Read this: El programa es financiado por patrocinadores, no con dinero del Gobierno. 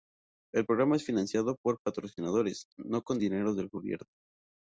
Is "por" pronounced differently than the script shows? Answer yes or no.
no